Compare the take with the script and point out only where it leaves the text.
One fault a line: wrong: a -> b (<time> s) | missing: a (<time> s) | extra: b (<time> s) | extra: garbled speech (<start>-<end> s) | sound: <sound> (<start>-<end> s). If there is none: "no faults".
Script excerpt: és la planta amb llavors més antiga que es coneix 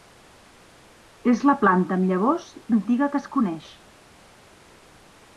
missing: més (2.5 s)